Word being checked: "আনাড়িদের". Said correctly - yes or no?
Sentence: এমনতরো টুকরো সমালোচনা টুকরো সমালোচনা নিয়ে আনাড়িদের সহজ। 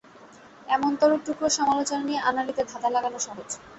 no